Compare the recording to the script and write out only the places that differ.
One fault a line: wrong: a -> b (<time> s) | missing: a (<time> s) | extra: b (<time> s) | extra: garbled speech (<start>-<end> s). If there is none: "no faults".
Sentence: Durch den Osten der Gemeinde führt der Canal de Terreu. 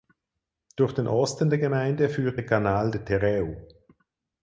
no faults